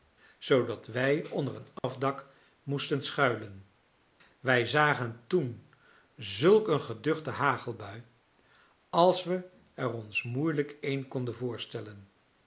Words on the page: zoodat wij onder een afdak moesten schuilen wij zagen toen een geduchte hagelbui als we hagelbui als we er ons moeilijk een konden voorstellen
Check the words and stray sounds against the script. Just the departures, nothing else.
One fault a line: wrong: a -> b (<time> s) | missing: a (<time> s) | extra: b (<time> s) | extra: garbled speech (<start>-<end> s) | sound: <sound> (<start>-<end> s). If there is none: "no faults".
sound: dropout (1.8-1.8 s)
extra: zulk (6.2 s)
missing: hagelbui als we (9.5 s)